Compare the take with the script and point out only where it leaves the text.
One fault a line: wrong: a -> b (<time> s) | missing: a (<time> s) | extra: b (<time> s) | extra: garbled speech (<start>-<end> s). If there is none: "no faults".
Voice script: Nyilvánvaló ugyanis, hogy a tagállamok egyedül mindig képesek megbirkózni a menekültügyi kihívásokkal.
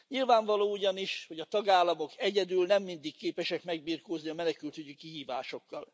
extra: nem (2.6 s)